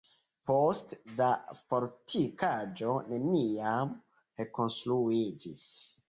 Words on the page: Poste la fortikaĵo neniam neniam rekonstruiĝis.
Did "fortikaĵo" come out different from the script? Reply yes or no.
no